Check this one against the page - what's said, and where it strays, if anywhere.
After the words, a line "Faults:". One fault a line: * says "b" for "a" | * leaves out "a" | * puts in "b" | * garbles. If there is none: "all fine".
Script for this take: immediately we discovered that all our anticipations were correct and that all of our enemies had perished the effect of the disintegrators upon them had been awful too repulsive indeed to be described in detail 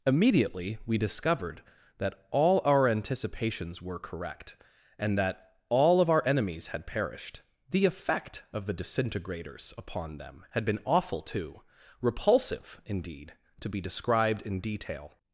immediately we discovered that all our anticipations were correct and that all of our enemies had perished the effect of the disintegrators upon them had been awful too repulsive indeed to be described in detail
Faults:
all fine